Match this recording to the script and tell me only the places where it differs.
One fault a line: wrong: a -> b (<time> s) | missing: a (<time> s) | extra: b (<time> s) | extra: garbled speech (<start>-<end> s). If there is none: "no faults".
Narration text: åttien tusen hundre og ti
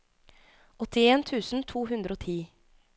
extra: to (1.7 s)